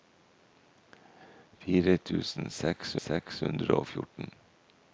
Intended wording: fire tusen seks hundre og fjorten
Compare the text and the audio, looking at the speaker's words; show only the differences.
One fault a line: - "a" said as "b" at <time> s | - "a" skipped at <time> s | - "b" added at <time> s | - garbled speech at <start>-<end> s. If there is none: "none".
- "seks" added at 3.1 s